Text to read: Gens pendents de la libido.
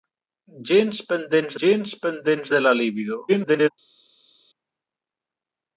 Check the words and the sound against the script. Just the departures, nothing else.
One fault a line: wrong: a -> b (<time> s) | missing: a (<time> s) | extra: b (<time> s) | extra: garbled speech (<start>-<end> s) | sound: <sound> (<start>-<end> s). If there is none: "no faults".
extra: gens pendents (1.6 s)
extra: garbled speech (3.3-3.7 s)